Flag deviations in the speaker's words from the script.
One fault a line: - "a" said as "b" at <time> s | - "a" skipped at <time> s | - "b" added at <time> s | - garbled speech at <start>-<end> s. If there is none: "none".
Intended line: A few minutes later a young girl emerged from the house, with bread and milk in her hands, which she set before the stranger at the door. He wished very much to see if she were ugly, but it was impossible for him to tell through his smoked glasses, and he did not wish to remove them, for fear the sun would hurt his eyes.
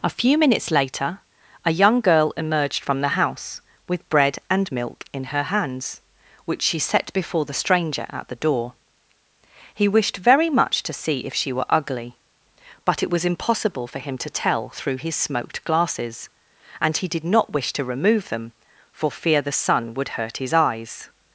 none